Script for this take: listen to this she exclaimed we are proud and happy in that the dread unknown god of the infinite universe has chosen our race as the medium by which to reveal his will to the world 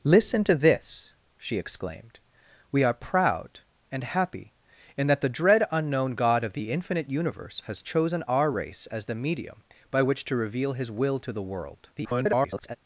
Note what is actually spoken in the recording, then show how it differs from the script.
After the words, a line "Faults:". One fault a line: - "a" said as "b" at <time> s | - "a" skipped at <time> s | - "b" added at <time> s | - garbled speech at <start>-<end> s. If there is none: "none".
listen to this she exclaimed we are proud and happy in that the dread unknown god of the infinite universe has chosen our race as the medium by which to reveal his will to the world [garbled]
Faults:
- garbled speech at 12.0-12.8 s